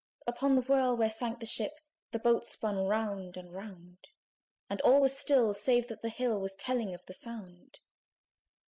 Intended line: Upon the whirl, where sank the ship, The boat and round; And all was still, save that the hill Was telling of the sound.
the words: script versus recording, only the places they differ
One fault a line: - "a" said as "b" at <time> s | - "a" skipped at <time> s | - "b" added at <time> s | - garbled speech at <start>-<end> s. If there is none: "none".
- "spun round" added at 2.4 s